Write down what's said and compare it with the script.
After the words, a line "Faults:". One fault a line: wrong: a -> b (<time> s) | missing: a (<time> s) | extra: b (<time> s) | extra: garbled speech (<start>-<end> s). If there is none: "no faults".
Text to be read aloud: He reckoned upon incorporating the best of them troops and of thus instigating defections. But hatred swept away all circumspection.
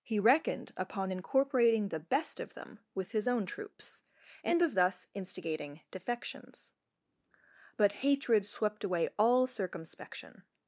He reckoned upon incorporating the best of them with his own troops and of thus instigating defections. But hatred swept away all circumspection.
Faults:
extra: with his own (3.0 s)